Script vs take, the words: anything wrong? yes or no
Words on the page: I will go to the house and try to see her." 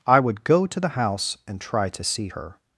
yes